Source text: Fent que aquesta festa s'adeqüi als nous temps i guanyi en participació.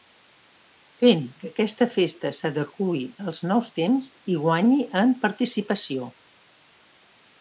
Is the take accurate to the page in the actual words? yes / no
yes